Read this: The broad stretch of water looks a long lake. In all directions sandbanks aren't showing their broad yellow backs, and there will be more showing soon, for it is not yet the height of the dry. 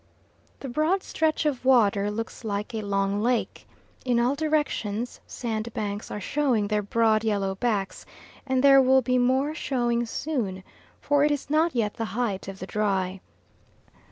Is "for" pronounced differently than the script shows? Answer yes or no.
no